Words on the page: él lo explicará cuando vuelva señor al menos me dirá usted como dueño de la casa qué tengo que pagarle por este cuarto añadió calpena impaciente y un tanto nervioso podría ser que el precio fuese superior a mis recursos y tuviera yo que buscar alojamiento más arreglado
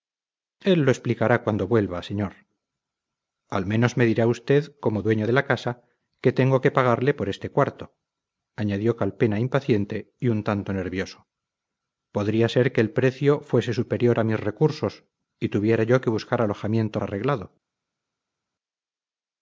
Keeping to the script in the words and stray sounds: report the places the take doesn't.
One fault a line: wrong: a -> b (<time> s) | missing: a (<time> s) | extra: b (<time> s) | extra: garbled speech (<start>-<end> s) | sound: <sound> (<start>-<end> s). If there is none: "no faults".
missing: más (17.0 s)